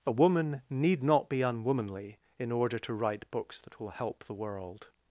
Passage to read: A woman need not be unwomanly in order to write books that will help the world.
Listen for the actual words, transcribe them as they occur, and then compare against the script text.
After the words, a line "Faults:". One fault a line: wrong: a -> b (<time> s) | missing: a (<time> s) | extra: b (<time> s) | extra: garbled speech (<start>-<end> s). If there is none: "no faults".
A woman need not be unwomanly in order to write books that will help the world.
Faults:
no faults